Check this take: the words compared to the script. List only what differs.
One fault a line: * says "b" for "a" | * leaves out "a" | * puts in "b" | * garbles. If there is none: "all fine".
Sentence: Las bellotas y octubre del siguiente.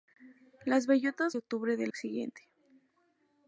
all fine